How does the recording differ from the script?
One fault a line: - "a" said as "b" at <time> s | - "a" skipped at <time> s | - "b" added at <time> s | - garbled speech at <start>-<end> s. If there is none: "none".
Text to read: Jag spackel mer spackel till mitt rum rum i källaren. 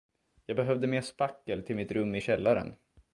- "spackel" said as "behövde" at 0.6 s
- "rum" skipped at 2.1 s